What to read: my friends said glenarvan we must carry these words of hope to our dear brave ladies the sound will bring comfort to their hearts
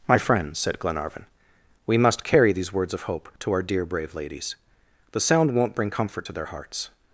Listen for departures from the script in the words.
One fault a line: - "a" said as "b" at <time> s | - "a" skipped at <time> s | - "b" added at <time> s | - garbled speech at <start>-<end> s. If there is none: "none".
- "will" said as "won't" at 5.5 s